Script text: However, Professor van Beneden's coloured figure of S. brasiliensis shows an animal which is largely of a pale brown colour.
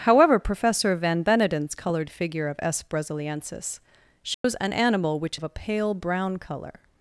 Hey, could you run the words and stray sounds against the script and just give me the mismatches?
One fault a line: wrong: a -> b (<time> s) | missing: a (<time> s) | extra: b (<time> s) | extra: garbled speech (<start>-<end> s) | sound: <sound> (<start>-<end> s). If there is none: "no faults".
sound: dropout (4.3-4.4 s)
missing: is largely (5.4 s)